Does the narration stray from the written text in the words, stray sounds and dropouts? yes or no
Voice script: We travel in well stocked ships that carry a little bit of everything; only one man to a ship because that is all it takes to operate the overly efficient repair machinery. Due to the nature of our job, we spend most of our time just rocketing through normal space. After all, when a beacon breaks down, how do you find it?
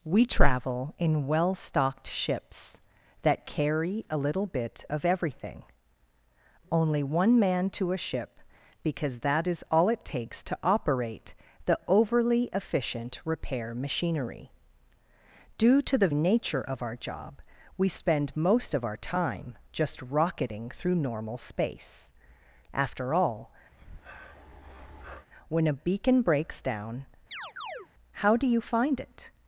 yes